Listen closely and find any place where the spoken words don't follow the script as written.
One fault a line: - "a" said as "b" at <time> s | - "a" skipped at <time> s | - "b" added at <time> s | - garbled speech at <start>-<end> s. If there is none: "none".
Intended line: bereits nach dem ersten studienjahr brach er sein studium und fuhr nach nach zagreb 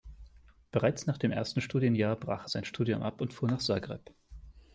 - "ab" added at 3.0 s
- "nach" skipped at 3.6 s